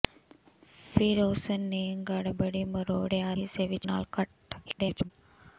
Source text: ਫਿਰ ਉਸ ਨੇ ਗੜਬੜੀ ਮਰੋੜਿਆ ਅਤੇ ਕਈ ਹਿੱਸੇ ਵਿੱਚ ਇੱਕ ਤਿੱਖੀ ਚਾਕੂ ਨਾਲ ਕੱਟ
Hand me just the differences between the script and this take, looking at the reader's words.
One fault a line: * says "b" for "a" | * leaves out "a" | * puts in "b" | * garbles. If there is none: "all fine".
* leaves out "ਅਤੇ ਕਈ"
* leaves out "ਇੱਕ ਤਿੱਖੀ ਚਾਕੂ"
* garbles